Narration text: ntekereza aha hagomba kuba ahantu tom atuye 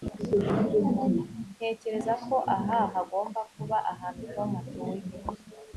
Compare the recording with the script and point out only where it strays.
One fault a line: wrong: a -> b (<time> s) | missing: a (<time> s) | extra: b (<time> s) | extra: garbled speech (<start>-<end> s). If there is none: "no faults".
extra: ko (2.2 s)